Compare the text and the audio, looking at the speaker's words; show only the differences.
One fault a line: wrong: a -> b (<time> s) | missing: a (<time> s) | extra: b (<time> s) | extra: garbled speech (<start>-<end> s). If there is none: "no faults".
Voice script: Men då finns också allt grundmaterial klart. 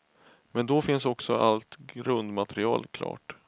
no faults